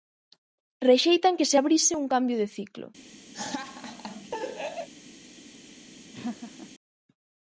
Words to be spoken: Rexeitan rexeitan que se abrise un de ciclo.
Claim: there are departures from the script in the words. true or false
true